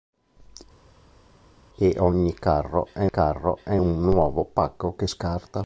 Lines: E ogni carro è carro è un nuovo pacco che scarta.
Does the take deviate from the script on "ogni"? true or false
false